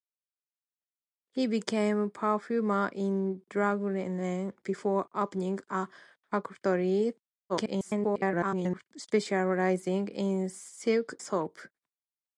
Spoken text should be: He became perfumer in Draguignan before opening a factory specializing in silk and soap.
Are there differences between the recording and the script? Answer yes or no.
yes